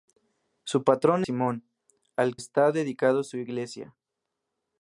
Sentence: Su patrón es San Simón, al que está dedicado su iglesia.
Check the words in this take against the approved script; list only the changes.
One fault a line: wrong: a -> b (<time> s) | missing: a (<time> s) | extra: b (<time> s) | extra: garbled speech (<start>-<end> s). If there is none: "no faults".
missing: es San (1.2 s)
missing: que (2.4 s)